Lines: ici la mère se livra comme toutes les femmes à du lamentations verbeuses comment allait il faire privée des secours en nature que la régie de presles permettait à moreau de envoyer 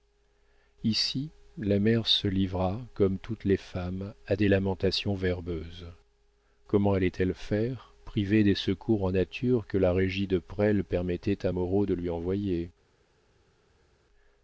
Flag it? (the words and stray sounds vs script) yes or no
yes